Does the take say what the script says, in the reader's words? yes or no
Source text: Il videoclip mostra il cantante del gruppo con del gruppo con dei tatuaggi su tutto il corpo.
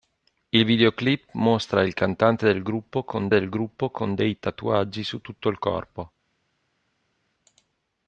yes